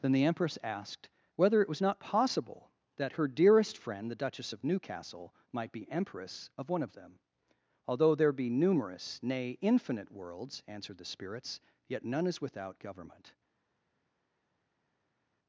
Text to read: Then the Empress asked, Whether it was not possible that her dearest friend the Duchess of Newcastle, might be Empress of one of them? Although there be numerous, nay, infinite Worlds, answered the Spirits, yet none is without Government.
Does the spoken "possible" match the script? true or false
true